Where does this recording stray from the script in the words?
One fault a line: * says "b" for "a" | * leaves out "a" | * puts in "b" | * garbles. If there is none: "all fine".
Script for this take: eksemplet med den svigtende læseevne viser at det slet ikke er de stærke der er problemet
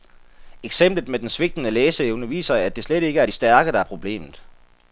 all fine